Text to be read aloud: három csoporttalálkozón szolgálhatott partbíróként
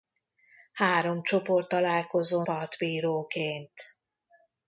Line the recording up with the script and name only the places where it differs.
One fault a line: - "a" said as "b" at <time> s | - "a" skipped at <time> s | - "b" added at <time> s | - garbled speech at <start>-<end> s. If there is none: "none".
- "szolgálhatott" skipped at 2.5 s